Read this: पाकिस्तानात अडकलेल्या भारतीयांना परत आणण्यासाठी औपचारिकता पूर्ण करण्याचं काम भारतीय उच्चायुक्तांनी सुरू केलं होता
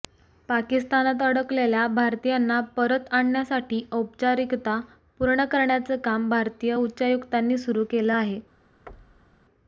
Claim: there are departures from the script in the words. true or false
true